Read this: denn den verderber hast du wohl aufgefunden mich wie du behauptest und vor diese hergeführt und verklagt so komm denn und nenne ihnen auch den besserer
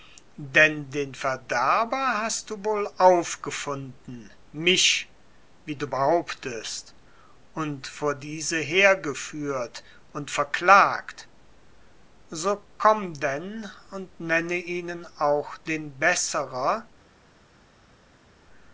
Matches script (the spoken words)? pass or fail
pass